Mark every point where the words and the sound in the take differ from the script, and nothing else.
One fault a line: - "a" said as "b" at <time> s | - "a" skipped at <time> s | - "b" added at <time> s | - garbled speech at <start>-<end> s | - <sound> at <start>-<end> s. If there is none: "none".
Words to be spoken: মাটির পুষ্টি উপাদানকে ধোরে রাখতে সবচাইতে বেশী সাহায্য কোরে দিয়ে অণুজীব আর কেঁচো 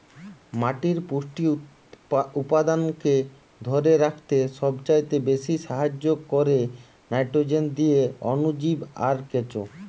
- "নাইট্রোজেন" added at 7.1 s